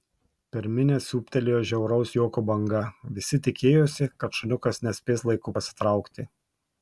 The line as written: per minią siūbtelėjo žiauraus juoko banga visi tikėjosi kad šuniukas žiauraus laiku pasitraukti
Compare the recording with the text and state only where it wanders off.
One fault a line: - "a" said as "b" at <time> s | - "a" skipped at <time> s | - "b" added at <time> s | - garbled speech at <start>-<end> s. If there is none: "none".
- "žiauraus" said as "nespės" at 4.9 s